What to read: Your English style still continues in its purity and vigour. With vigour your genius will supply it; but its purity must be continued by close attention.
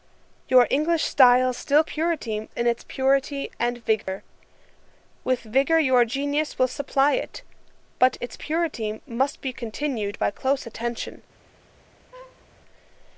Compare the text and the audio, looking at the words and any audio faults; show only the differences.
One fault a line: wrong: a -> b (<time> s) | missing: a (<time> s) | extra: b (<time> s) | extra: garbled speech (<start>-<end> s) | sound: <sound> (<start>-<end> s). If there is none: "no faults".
wrong: continues -> purity (1.9 s)
sound: dropout (4.0-4.1 s)
sound: laugh (12.1-12.5 s)